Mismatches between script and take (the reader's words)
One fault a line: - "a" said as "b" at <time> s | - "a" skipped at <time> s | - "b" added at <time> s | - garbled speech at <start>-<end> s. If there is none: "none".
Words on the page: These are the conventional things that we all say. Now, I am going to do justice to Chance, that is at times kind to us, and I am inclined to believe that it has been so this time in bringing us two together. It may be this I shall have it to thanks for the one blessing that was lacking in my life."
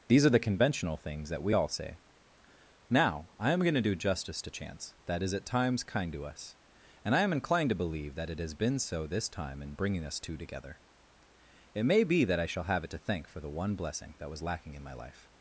- "this" said as "that" at 12.2 s
- "thanks" said as "thank" at 13.0 s